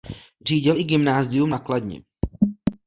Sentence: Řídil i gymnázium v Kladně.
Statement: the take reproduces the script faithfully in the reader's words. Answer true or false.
false